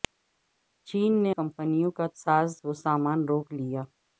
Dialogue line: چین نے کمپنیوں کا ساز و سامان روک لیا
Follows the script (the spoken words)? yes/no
yes